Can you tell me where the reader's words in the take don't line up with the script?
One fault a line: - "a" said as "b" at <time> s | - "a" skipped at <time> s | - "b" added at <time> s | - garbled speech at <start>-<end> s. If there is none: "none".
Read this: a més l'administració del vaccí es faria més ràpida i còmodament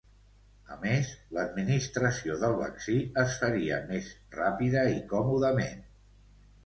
none